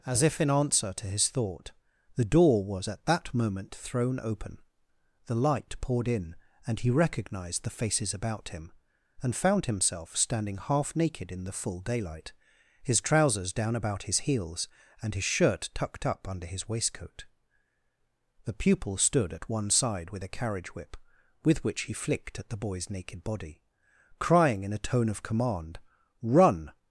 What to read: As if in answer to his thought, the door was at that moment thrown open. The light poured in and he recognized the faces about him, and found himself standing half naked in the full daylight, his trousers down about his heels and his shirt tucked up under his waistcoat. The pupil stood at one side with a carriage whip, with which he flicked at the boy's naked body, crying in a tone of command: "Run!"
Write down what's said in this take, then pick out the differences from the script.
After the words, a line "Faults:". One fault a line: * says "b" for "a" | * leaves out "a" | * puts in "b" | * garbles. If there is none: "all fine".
As if in answer to his thought, the door was at that moment thrown open. The light poured in and he recognized the faces about him, and found himself standing half naked in the full daylight, his trousers down about his heels and his shirt tucked up under his waistcoat. The pupil stood at one side with a carriage whip, with which he flicked at the boy's naked body, crying in a tone of command: "Run!"
Faults:
all fine